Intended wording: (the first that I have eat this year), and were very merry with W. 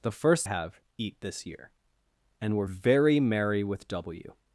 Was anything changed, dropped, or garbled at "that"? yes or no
yes